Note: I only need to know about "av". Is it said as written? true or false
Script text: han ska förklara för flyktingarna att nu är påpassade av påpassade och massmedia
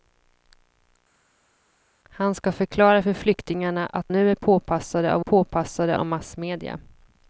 true